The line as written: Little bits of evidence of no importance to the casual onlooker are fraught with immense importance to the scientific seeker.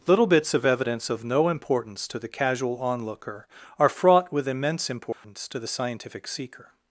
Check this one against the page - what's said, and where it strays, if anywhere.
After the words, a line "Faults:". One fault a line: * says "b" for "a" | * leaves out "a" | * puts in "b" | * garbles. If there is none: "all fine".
Little bits of evidence of no importance to the casual onlooker are fraught with immense importance to the scientific seeker.
Faults:
all fine